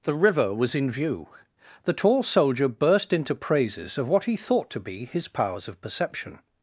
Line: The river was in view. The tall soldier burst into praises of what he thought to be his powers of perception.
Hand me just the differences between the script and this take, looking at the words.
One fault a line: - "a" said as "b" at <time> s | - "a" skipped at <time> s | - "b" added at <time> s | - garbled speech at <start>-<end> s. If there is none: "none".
none